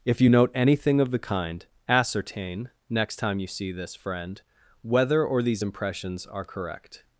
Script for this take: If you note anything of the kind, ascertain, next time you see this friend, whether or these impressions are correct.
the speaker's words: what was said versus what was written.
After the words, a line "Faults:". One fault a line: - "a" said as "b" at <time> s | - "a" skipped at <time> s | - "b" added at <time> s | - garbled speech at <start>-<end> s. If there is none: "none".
If you note anything of the kind, ascertain, next time you see this friend, whether or these impressions are correct.
Faults:
none